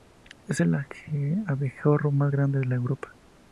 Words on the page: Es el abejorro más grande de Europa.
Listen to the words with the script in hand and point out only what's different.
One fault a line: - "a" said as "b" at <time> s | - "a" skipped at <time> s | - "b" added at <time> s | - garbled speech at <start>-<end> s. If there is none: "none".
none